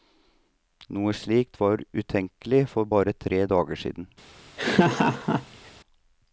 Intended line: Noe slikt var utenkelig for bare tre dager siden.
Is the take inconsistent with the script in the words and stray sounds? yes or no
yes